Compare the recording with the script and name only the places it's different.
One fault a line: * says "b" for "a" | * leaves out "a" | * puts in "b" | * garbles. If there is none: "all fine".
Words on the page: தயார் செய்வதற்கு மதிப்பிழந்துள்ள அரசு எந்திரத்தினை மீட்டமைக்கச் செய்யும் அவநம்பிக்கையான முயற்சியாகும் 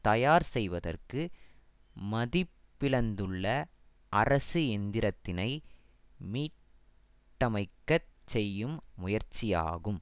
* leaves out "அவநம்பிக்கையான"